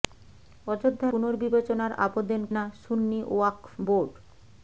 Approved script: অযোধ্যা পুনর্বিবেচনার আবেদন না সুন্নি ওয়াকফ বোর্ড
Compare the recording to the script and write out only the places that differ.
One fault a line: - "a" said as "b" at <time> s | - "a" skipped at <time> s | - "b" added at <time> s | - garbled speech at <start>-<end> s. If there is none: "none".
none